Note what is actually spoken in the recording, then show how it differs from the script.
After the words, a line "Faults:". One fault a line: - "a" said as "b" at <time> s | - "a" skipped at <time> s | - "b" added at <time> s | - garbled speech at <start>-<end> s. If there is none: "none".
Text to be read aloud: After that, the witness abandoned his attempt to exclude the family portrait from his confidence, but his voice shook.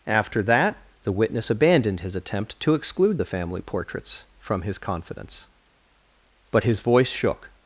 After that, the witness abandoned his attempt to exclude the family portraits from his confidence, but his voice shook.
Faults:
- "portrait" said as "portraits" at 3.6 s